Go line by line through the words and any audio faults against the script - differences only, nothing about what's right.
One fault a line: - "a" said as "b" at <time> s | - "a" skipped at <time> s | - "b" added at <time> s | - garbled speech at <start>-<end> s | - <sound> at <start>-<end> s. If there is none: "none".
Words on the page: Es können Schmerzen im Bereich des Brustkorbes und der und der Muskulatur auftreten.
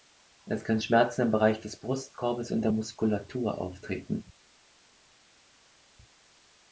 - "und der" skipped at 2.7 s